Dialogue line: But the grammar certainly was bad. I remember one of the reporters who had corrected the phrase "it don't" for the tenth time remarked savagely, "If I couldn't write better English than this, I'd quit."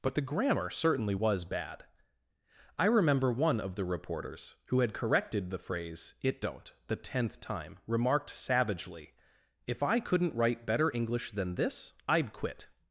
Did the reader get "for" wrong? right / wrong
wrong